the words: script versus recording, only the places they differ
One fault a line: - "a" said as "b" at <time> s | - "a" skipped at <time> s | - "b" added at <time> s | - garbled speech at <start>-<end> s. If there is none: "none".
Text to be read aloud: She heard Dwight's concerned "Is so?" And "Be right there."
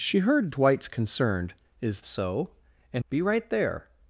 none